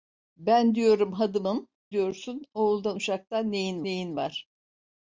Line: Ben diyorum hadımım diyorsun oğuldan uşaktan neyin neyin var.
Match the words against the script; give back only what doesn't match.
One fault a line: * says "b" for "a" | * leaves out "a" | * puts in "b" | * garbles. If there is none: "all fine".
all fine